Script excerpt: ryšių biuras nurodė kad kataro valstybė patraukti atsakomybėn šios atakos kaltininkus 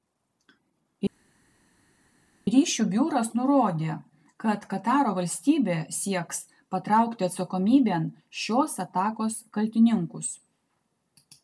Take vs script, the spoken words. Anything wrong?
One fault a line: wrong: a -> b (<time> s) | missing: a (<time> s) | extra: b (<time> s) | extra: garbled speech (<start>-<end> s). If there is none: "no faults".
extra: sieks (6.0 s)